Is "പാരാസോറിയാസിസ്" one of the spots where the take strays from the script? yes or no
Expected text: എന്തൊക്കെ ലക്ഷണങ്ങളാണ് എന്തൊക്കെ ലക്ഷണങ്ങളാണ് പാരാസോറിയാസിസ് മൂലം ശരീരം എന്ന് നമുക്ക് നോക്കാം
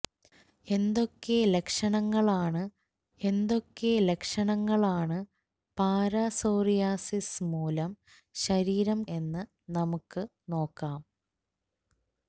no